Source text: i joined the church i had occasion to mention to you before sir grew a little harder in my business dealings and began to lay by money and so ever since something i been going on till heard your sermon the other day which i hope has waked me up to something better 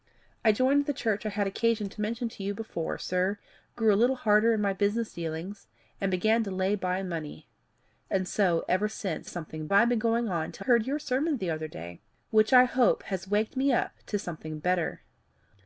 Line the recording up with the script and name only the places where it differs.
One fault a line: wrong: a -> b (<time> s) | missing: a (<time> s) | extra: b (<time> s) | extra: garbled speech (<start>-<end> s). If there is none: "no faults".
no faults